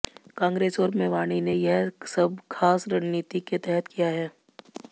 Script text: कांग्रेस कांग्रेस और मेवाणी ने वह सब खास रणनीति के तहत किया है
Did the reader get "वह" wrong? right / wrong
wrong